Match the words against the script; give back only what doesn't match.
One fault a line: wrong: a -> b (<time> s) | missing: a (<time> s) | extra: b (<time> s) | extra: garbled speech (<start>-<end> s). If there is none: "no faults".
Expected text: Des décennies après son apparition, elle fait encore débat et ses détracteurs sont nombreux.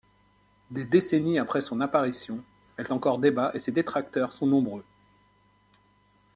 missing: fait (2.9 s)